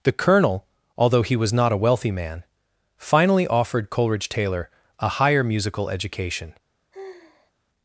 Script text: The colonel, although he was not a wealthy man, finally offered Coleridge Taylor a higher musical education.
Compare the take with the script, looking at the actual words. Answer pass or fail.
pass